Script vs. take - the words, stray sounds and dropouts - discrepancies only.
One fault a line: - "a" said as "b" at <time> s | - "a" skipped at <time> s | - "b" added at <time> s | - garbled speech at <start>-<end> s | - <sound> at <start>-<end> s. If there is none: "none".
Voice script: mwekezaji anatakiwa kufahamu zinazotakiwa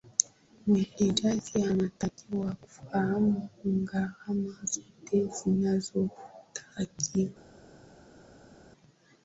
- "gharama zote" added at 3.6 s